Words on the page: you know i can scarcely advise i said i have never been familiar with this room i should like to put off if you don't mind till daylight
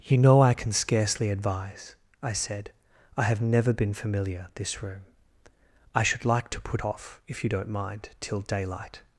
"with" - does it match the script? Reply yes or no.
no